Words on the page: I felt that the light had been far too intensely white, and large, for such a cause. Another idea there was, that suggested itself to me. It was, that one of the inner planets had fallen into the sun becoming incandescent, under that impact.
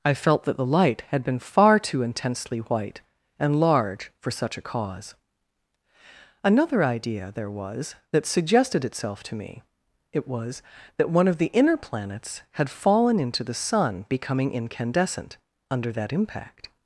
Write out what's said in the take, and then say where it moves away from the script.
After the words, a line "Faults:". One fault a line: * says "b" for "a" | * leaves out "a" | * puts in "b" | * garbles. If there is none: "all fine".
I felt that the light had been far too intensely white, and large, for such a cause. Another idea there was, that suggested itself to me. It was, that one of the inner planets had fallen into the sun becoming incandescent, under that impact.
Faults:
all fine